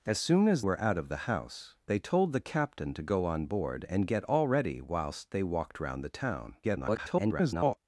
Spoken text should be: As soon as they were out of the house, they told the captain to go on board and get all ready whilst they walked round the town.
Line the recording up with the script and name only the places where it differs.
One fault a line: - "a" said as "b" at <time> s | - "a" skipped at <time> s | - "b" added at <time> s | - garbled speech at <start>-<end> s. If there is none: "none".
- "they" skipped at 0.6 s
- garbled speech at 6.6-7.8 s